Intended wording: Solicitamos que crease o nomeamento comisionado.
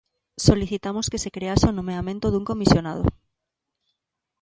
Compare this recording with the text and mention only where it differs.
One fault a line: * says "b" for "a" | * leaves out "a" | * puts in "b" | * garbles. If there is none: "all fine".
* puts in "se"
* puts in "dun"